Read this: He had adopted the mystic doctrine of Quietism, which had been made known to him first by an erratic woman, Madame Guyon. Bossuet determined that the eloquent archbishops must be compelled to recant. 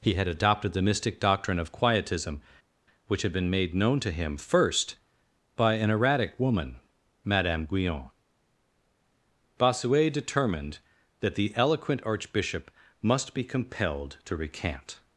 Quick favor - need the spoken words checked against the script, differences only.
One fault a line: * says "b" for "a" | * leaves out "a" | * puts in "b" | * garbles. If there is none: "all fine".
* says "archbishop" for "archbishops"